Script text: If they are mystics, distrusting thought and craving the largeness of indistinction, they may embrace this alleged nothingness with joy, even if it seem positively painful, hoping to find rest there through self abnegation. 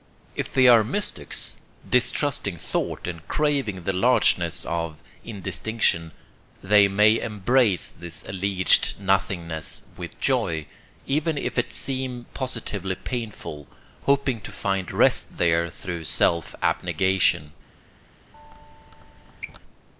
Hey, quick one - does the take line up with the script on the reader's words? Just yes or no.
yes